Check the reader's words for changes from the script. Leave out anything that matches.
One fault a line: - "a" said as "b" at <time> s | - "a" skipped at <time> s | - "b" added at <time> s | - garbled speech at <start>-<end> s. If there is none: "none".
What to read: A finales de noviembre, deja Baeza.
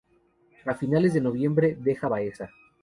none